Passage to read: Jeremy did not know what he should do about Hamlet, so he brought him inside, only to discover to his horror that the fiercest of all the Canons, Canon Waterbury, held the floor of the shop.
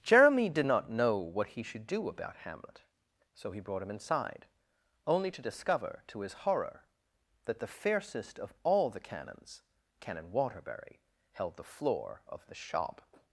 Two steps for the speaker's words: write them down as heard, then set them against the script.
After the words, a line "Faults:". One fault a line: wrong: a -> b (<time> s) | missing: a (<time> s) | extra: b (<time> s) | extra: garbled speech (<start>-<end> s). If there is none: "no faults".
Jeremy did not know what he should do about Hamlet, so he brought him inside, only to discover to his horror that the fiercest of all the Canons, Canon Waterbury, held the floor of the shop.
Faults:
no faults